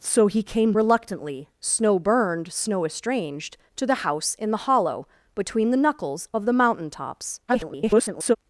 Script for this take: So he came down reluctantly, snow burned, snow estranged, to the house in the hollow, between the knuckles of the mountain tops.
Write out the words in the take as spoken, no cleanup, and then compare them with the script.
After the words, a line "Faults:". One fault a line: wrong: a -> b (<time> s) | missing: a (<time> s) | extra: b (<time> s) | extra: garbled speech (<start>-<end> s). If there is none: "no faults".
So he came reluctantly, snow burned, snow estranged, to the house in the hollow, between the knuckles of the mountain tops. [garbled]
Faults:
missing: down (0.7 s)
extra: garbled speech (7.5-8.4 s)